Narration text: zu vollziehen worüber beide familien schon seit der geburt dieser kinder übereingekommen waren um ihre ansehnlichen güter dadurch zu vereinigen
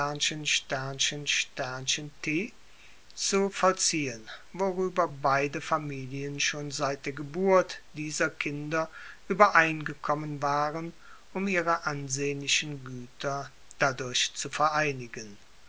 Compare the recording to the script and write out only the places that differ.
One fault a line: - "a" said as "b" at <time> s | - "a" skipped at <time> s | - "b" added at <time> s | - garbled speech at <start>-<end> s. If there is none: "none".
none